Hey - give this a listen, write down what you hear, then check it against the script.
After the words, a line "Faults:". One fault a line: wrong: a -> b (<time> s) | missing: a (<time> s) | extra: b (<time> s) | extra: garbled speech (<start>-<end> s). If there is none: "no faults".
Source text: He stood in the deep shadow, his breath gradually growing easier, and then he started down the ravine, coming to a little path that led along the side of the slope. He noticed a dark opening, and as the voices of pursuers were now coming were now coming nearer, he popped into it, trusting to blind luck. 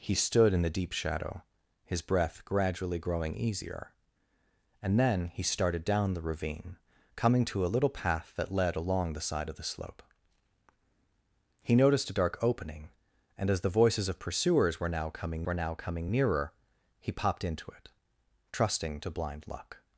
He stood in the deep shadow, his breath gradually growing easier, and then he started down the ravine, coming to a little path that led along the side of the slope. He noticed a dark opening, and as the voices of pursuers were now coming were now coming nearer, he popped into it, trusting to blind luck.
Faults:
no faults